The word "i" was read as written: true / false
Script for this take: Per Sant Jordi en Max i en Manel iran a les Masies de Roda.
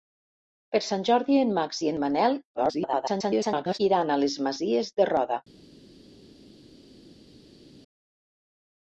true